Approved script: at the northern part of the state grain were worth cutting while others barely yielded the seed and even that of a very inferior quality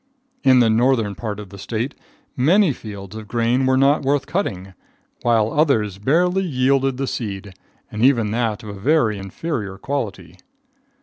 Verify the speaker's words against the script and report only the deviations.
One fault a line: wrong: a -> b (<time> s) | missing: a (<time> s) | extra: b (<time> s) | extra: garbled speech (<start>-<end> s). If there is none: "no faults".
wrong: at -> in (0.4 s)
extra: many fields of (2.4 s)
extra: not (3.8 s)